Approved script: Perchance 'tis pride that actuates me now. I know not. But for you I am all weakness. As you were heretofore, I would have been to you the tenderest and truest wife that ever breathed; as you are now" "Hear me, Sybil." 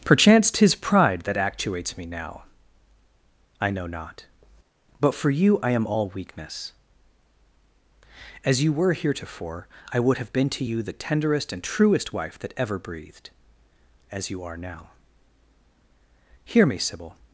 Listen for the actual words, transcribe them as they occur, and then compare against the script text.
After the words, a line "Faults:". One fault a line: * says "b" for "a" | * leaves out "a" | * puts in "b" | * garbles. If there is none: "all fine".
Perchance 'tis pride that actuates me now. I know not. But for you I am all weakness. As you were heretofore, I would have been to you the tenderest and truest wife that ever breathed; as you are now" "Hear me, Sybil."
Faults:
all fine